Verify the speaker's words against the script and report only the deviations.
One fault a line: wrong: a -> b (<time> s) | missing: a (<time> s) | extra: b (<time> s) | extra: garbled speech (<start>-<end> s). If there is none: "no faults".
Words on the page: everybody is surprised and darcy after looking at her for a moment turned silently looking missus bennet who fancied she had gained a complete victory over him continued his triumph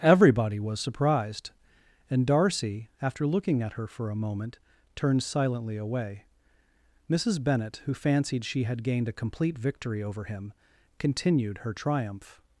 wrong: is -> was (0.6 s)
wrong: looking -> away (5.8 s)
wrong: his -> her (11.6 s)